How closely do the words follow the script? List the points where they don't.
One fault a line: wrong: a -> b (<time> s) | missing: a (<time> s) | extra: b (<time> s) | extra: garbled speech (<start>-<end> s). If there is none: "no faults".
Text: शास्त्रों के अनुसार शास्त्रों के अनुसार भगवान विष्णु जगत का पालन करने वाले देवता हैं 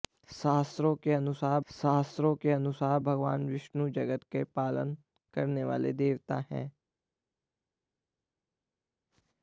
no faults